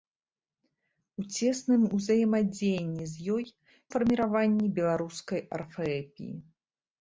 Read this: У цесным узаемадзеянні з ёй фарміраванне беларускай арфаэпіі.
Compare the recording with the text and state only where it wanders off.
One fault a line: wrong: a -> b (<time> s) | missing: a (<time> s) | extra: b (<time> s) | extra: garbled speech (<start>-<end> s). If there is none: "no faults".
no faults